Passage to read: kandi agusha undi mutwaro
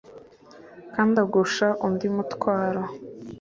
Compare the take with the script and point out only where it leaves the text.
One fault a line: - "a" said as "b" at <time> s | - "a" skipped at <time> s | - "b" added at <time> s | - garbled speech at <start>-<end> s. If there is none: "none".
none